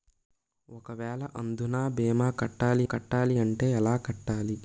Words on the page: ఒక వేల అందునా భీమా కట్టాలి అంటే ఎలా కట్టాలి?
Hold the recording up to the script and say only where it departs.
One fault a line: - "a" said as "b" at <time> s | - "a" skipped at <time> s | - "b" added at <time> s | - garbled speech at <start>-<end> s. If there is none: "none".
- "కట్టాలి" added at 2.8 s